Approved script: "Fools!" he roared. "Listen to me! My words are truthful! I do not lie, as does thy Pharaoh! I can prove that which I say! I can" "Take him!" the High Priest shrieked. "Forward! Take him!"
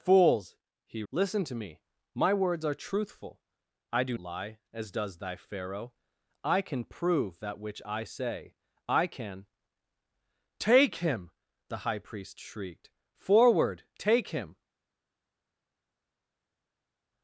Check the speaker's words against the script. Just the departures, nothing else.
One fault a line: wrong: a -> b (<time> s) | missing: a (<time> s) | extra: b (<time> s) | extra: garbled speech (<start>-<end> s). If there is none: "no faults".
missing: roared (1.0 s)
missing: not (4.2 s)